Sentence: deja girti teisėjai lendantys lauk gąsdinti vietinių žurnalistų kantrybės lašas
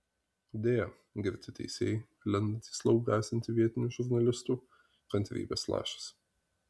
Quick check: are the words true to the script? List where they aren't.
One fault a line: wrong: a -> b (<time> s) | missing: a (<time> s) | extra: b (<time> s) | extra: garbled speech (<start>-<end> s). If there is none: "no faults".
no faults